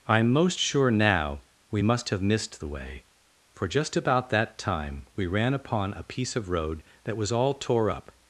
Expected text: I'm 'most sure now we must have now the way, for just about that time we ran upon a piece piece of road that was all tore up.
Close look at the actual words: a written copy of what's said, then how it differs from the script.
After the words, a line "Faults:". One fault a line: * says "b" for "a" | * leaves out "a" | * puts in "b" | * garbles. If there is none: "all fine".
I'm 'most sure now we must have missed the way, for just about that time we ran upon a piece of road that was all tore up.
Faults:
* says "missed" for "now"
* leaves out "piece"